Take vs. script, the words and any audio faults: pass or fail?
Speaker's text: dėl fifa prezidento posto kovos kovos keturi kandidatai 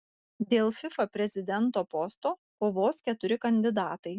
fail